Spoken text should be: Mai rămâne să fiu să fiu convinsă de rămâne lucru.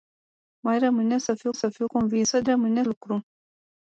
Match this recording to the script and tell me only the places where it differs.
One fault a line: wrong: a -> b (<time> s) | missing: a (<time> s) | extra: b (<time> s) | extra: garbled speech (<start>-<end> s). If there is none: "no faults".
no faults